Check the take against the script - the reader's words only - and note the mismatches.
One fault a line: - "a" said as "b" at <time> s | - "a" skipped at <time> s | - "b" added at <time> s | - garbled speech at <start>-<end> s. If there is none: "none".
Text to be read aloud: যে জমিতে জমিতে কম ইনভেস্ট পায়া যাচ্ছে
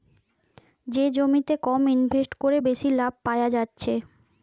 - "জমিতে" skipped at 1.5 s
- "কোরে বেশি লাভ" added at 2.4 s